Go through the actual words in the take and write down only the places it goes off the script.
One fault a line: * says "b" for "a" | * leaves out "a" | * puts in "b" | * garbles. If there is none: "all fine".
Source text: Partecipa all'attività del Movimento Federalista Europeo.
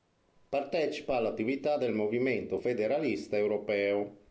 all fine